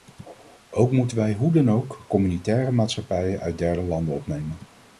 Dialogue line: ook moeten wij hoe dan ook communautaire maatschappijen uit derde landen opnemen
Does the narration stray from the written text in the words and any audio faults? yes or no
no